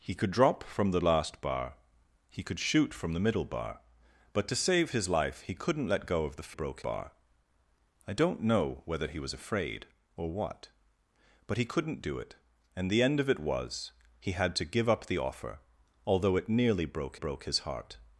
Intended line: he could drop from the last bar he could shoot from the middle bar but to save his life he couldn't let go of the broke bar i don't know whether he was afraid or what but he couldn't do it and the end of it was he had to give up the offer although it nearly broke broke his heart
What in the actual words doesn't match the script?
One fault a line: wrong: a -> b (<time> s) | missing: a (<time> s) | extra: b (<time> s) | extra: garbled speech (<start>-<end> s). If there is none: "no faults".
no faults